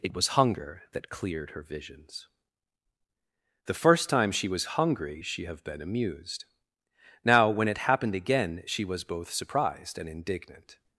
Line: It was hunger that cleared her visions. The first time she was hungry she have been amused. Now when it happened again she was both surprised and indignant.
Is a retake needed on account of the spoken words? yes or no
no